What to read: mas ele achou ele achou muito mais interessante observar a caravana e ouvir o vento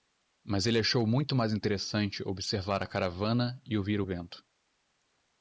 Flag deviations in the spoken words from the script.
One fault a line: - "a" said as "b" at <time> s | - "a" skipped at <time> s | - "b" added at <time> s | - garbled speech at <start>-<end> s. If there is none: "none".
- "ele achou" skipped at 1.1 s